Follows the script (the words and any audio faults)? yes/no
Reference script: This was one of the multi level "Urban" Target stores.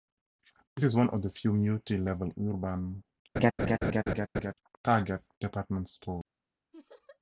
no